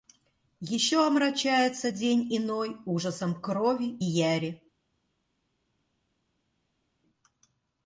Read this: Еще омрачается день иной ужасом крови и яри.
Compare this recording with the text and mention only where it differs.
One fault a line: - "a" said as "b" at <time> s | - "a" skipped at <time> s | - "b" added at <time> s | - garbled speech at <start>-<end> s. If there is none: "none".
none